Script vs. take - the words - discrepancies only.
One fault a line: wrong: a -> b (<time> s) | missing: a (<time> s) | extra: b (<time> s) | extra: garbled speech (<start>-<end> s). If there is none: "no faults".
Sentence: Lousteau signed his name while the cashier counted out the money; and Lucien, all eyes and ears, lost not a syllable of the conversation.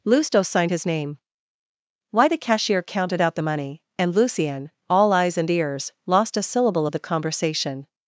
wrong: while -> why (2.1 s)
missing: not (6.4 s)